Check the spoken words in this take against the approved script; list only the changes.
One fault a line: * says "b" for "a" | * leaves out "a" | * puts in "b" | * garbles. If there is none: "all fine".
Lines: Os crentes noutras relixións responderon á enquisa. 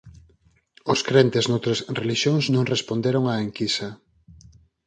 * puts in "non"